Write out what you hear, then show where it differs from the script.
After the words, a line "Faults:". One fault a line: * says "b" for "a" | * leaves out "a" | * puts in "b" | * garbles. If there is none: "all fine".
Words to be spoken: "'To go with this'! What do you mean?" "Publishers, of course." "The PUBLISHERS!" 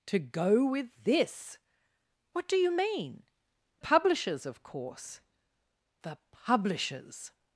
"'To go with this'! What do you mean?" "Publishers, of course." "The PUBLISHERS!"
Faults:
all fine